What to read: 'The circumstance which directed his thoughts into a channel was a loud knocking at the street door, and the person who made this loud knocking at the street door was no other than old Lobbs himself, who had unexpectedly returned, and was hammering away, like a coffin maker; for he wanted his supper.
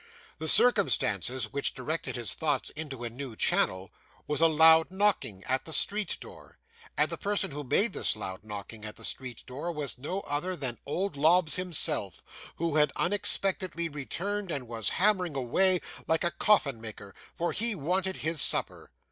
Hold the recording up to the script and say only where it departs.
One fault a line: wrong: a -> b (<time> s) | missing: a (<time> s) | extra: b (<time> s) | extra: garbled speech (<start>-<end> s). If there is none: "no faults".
extra: new (3.1 s)